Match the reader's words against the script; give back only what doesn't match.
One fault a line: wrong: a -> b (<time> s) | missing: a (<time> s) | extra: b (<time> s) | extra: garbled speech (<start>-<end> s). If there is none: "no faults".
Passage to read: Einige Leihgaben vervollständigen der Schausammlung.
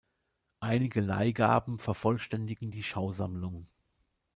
wrong: der -> die (2.7 s)